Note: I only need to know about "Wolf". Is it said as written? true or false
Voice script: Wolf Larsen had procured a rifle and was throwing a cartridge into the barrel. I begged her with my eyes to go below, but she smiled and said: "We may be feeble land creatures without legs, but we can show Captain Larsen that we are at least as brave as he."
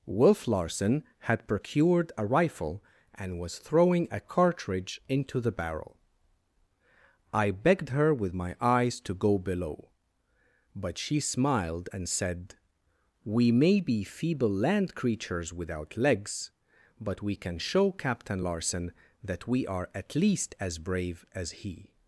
true